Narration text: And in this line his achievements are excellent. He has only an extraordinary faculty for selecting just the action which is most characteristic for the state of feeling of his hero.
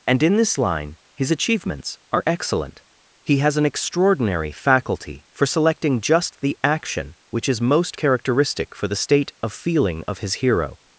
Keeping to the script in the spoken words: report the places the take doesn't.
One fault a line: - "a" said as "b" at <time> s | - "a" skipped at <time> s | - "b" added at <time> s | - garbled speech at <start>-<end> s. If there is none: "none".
- "only" skipped at 3.6 s